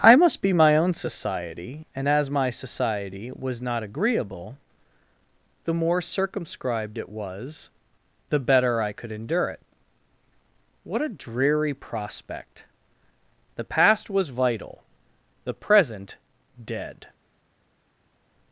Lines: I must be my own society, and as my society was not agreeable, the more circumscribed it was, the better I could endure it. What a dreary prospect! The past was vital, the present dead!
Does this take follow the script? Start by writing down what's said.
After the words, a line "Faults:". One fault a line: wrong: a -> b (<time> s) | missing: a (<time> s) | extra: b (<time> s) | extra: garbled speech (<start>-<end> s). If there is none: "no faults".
I must be my own society, and as my society was not agreeable, the more circumscribed it was, the better I could endure it. What a dreary prospect! The past was vital, the present dead!
Faults:
no faults